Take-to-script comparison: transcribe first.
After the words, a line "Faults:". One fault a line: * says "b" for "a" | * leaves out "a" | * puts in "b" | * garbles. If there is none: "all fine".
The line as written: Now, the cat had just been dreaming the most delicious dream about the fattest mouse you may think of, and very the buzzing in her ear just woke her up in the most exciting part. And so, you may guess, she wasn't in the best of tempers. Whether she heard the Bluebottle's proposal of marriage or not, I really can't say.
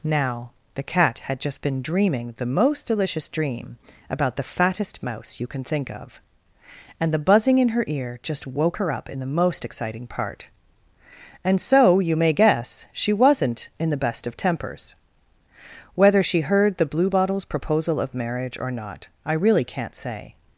Now, the cat had just been dreaming the most delicious dream about the fattest mouse you can think of, and the buzzing in her ear just woke her up in the most exciting part. And so, you may guess, she wasn't in the best of tempers. Whether she heard the Bluebottle's proposal of marriage or not, I really can't say.
Faults:
* says "can" for "may"
* leaves out "very"